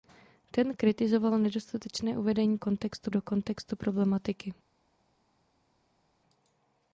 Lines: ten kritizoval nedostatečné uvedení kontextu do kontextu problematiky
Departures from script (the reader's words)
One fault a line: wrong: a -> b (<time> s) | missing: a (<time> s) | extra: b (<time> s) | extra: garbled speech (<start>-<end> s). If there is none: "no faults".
no faults